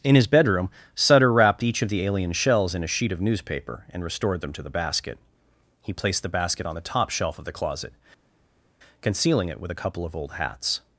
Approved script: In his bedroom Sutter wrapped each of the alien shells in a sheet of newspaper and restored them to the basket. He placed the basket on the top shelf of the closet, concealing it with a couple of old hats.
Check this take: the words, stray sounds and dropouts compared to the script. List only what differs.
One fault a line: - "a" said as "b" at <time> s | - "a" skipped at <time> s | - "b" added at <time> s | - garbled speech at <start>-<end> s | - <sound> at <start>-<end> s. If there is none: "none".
none